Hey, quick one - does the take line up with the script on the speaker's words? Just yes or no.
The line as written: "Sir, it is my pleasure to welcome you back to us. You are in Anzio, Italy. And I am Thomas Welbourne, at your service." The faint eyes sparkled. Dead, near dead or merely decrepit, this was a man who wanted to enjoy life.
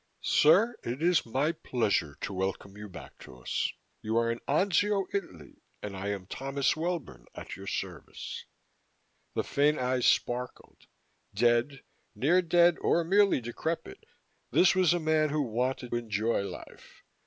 no